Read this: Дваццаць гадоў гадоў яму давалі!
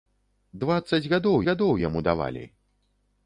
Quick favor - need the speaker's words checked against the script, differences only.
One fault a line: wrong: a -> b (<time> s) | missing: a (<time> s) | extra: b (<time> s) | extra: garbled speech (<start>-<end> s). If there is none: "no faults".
no faults